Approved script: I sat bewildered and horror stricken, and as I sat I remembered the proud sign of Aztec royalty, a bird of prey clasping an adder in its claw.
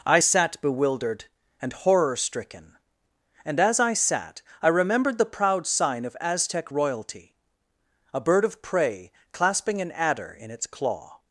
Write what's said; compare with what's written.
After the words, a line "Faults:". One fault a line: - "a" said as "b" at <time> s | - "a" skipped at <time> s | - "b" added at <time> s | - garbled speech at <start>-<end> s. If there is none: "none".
I sat bewildered and horror stricken, and as I sat I remembered the proud sign of Aztec royalty, a bird of prey clasping an adder in its claw.
Faults:
none